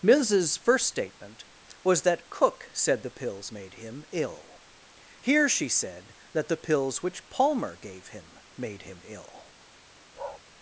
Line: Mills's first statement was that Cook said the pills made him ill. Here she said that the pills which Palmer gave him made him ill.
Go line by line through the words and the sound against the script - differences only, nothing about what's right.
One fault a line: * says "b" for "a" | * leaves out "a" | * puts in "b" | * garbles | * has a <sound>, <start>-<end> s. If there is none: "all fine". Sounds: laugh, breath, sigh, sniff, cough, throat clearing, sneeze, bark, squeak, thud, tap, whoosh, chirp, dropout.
* has a bark, 10.1-10.4 s